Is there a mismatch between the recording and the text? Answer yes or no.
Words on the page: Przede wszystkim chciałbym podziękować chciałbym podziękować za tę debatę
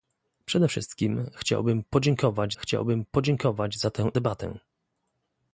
no